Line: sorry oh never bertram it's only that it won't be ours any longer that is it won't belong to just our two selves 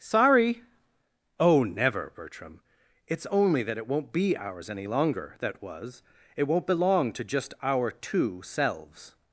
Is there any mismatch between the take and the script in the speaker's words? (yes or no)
yes